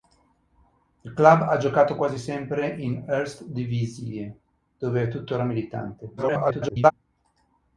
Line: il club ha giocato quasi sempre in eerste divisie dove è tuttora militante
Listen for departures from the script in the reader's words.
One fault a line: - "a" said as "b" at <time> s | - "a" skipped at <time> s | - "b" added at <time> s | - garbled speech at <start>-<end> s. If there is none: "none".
- garbled speech at 6.2-6.9 s